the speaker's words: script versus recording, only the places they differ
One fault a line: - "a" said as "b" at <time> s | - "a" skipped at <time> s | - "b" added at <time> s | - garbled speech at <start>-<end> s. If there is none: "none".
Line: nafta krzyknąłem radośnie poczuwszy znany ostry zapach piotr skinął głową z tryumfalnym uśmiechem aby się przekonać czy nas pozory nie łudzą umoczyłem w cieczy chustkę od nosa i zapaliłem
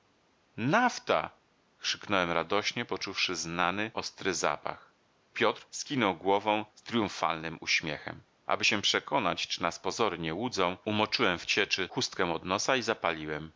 none